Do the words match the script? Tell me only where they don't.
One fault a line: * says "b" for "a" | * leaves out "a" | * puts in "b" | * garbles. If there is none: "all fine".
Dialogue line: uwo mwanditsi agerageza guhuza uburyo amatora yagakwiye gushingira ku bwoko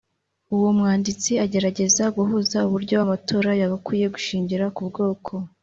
all fine